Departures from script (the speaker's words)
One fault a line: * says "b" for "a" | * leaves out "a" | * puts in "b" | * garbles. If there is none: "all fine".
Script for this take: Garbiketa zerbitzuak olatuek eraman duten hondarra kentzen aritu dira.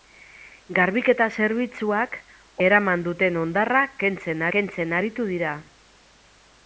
* leaves out "olatuek"
* puts in "kentzen"